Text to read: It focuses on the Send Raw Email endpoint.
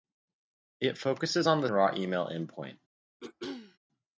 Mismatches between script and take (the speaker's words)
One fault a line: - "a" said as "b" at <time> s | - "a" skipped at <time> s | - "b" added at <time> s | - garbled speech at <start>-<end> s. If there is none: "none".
- "Send" skipped at 1.7 s